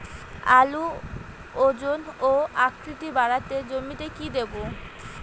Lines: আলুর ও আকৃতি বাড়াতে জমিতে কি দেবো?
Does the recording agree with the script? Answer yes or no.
no